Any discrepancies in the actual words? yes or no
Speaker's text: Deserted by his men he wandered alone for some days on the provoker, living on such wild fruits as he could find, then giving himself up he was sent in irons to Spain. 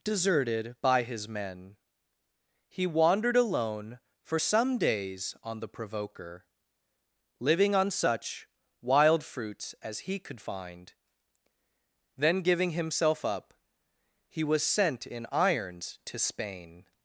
no